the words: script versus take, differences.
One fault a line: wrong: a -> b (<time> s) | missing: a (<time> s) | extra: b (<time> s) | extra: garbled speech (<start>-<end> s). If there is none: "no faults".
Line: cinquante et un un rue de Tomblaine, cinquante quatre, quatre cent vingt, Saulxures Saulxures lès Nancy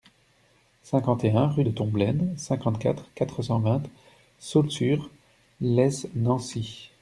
missing: un (1.4 s)
missing: Saulxures (5.1 s)